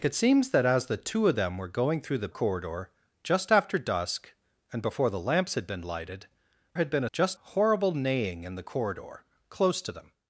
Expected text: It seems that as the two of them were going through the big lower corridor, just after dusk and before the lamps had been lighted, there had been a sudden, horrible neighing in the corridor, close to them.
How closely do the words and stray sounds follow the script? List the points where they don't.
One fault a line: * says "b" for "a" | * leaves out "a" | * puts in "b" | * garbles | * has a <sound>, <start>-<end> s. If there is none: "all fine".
* leaves out "big lower"
* leaves out "there"
* says "just" for "sudden"